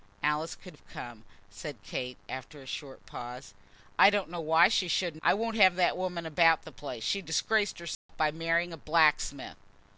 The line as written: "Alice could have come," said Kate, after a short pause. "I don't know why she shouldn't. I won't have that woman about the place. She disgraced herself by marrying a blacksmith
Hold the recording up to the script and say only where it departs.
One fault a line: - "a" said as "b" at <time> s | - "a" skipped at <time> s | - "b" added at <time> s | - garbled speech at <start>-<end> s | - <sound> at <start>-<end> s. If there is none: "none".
- dropout at 7.9-8.1 s